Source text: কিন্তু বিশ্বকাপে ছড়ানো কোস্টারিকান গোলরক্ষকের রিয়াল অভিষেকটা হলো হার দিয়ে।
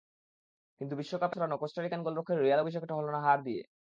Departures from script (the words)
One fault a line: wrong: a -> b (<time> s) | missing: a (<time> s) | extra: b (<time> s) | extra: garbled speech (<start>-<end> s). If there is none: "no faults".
no faults